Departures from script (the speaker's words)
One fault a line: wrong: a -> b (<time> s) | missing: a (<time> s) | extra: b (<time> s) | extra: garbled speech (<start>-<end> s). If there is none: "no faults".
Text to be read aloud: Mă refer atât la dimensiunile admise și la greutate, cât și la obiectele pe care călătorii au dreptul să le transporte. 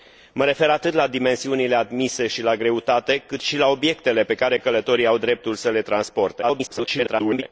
extra: garbled speech (6.4-7.4 s)